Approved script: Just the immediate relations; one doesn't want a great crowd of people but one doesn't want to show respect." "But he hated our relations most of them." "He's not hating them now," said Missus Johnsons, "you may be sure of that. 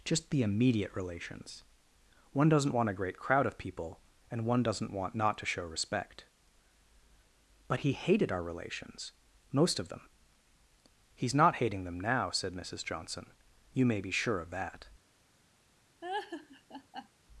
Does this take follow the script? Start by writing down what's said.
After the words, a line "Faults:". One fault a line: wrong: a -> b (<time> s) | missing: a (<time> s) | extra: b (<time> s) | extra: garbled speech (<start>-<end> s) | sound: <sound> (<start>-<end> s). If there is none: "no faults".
Just the immediate relations; one doesn't want a great crowd of people and one doesn't want not to show respect." "But he hated our relations most of them." "He's not hating them now," said Missus Johnson, "you may be sure of that.
Faults:
wrong: but -> and (4.3 s)
extra: not (5.1 s)
wrong: Johnsons -> Johnson (12.8 s)
sound: laugh (16.0-17.1 s)